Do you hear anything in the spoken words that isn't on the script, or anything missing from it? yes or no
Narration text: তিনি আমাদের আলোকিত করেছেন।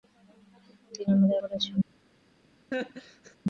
yes